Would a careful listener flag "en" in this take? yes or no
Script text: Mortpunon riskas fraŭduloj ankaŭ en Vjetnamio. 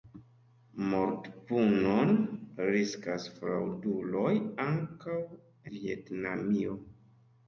yes